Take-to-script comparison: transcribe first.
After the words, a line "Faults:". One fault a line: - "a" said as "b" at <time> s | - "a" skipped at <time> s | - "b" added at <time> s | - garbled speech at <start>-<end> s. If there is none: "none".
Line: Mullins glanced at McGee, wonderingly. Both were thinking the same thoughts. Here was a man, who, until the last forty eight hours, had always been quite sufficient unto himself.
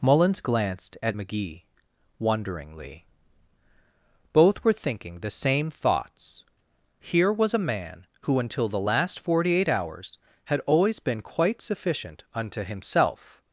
Mullins glanced at McGee, wonderingly. Both were thinking the same thoughts. Here was a man, who, until the last forty eight hours, had always been quite sufficient unto himself.
Faults:
none